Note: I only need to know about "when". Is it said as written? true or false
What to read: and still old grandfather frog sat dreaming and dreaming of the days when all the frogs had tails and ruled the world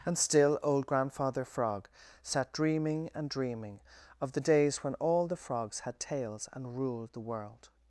true